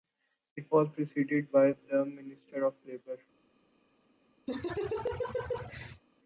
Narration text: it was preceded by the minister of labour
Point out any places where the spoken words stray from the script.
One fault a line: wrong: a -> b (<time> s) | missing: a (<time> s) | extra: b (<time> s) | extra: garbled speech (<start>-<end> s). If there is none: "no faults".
no faults